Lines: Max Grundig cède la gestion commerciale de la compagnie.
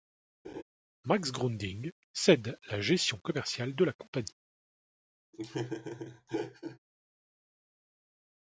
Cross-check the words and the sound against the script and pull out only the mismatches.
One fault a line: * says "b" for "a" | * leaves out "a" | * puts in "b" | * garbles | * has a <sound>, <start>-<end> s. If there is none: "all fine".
* has a laugh, 0.4-0.6 s
* has a laugh, 5.3-6.8 s